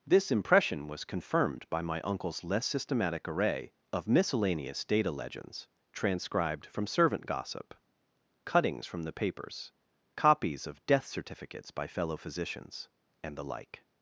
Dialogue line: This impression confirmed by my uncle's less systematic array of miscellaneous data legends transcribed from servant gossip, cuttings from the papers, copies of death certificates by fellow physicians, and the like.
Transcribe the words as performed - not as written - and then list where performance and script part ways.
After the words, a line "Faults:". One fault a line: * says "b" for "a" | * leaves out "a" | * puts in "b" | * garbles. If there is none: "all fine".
This impression was confirmed by my uncle's less systematic array of miscellaneous data legends transcribed from servant gossip, cuttings from the papers, copies of death certificates by fellow physicians, and the like.
Faults:
* puts in "was"